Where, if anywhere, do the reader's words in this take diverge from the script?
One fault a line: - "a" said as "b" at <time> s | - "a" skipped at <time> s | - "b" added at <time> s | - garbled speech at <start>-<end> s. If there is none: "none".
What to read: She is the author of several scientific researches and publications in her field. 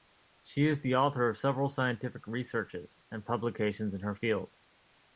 none